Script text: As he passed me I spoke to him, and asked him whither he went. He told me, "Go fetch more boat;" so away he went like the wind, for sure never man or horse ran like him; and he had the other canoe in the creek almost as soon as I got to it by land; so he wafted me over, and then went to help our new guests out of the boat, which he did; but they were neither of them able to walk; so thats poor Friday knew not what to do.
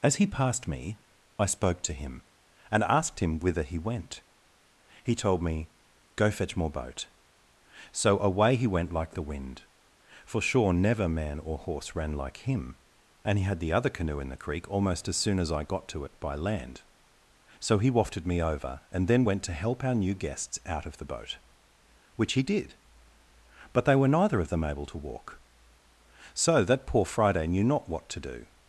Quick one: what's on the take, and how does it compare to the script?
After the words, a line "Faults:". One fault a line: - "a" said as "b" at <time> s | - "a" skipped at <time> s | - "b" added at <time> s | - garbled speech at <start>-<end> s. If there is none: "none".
As he passed me I spoke to him, and asked him whither he went. He told me, "Go fetch more boat;" so away he went like the wind, for sure never man or horse ran like him; and he had the other canoe in the creek almost as soon as I got to it by land; so he wafted me over, and then went to help our new guests out of the boat, which he did; but they were neither of them able to walk; so that poor Friday knew not what to do.
Faults:
- "thats" said as "that" at 26.6 s